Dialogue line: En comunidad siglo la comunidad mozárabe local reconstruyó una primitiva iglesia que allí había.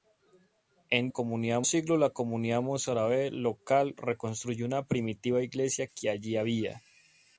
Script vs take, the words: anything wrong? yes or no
no